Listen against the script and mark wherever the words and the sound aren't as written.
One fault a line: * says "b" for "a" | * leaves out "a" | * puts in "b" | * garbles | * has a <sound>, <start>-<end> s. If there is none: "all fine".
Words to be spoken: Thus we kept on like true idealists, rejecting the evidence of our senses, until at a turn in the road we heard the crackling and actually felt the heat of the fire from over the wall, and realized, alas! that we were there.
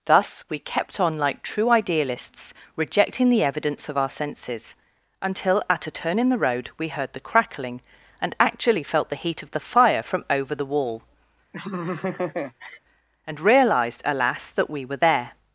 * has a laugh, 11.5-12.8 s